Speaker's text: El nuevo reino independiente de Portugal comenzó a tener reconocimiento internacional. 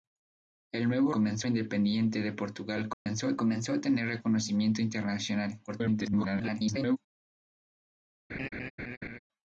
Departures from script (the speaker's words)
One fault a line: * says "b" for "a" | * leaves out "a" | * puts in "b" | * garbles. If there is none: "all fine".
* says "comenzó" for "reino"
* puts in "comenzó a"
* garbles